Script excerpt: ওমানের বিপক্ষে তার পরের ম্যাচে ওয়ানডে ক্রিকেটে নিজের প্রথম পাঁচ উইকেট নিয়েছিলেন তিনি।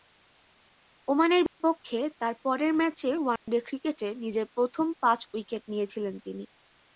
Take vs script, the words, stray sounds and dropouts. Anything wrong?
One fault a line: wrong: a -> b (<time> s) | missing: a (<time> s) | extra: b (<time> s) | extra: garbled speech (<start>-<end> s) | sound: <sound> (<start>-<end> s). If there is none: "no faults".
sound: dropout (1.5-1.6 s)
sound: dropout (3.4-3.5 s)